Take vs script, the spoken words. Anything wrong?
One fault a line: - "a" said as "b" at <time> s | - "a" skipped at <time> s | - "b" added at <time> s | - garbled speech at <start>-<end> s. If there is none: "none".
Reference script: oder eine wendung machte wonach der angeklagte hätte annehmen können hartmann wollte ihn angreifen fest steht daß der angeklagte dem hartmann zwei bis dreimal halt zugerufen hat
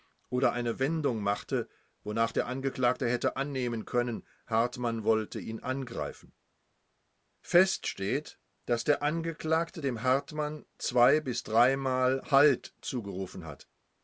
none